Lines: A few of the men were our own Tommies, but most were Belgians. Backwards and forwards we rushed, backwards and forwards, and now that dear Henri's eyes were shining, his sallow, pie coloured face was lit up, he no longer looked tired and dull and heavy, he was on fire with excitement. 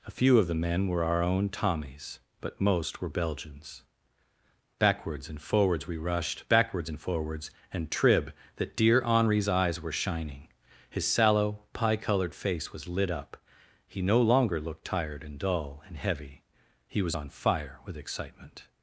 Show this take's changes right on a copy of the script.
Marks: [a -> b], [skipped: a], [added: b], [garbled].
A few of the men were our own Tommies, but most were Belgians. Backwards and forwards we rushed, backwards and forwards, and [now -> trib] that dear Henri's eyes were shining, his sallow, pie coloured face was lit up, he no longer looked tired and dull and heavy, he was on fire with excitement.